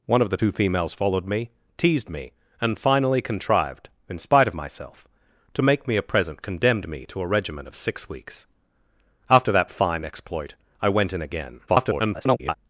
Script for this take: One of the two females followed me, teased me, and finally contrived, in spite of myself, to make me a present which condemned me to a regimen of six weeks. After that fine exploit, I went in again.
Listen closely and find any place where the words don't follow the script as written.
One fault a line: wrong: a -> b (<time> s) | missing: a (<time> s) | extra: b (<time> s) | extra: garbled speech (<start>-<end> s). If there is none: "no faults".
missing: which (6.4 s)
extra: garbled speech (11.7-12.5 s)